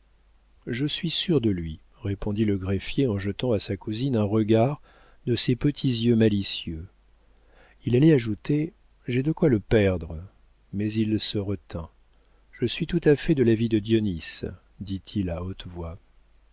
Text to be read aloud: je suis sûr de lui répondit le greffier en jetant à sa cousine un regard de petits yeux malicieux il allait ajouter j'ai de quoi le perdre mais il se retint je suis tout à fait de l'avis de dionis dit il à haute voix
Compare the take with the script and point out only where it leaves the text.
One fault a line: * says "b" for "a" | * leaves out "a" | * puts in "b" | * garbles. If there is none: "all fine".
* puts in "ses"